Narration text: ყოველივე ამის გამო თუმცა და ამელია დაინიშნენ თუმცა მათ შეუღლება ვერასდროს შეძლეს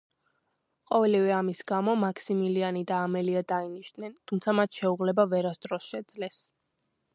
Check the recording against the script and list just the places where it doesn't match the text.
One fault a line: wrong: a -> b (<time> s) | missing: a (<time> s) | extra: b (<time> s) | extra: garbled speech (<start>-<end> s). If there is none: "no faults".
wrong: თუმცა -> მაქსიმილიანი (2.0 s)